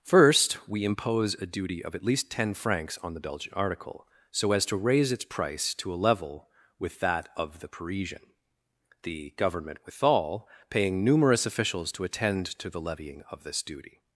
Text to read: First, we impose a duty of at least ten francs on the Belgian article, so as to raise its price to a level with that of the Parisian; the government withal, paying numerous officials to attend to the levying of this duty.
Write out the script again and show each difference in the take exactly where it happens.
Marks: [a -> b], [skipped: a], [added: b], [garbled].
First, we impose a duty of at least ten francs on the Belgian article, so as to raise its price to a level with that of the Parisian; the government withal, paying numerous officials to attend to the levying of this duty.